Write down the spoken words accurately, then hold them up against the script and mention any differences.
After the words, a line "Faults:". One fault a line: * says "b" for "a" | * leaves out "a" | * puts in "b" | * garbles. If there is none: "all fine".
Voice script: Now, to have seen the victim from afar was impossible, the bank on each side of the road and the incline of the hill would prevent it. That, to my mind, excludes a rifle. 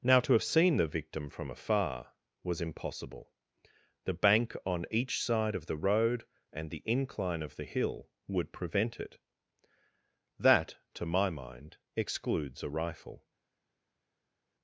Now, to have seen the victim from afar was impossible, the bank on each side of the road and the incline of the hill would prevent it. That, to my mind, excludes a rifle.
Faults:
all fine